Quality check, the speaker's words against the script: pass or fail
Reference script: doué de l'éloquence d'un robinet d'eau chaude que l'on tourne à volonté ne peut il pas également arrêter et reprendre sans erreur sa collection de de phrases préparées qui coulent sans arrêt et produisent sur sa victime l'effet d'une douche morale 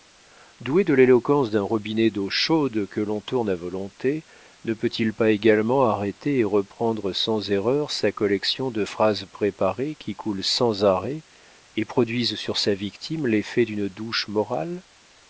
fail